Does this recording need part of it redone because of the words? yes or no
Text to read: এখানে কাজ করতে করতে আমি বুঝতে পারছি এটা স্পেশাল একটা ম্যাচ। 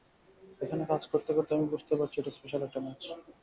no